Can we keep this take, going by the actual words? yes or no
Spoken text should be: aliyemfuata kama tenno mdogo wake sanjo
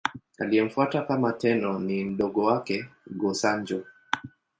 no